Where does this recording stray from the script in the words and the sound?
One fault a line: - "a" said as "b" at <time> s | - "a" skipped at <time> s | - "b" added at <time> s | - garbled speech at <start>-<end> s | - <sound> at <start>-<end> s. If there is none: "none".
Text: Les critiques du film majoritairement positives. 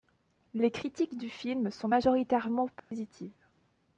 - "sont" added at 1.7 s
- dropout at 2.8-2.9 s